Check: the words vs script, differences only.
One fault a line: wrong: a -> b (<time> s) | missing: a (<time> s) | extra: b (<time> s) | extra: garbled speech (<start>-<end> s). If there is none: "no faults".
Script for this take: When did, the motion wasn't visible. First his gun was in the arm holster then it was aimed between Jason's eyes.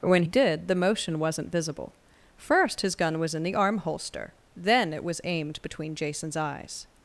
no faults